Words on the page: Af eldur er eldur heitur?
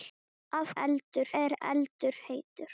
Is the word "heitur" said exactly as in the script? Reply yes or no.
yes